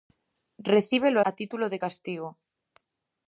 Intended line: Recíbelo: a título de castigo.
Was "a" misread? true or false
false